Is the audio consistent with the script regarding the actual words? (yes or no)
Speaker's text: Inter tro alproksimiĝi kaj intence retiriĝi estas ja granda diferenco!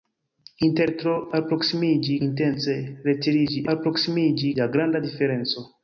no